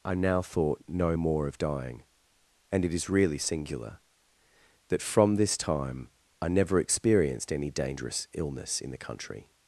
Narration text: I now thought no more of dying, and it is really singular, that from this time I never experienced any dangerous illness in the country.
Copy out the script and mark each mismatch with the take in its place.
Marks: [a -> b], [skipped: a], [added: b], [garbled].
I now thought no more of dying, and it is really singular, that from this time I never experienced any dangerous illness in the country.